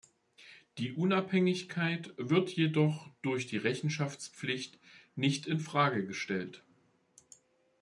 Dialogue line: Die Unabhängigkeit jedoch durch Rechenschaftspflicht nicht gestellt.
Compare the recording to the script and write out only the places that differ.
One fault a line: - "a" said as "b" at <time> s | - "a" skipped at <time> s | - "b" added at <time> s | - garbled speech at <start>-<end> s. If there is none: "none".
- "wird" added at 2.2 s
- "die" added at 3.5 s
- "in Frage" added at 5.5 s